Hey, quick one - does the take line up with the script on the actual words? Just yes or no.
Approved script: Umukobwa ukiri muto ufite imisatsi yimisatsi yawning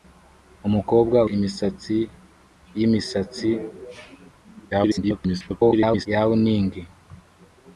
no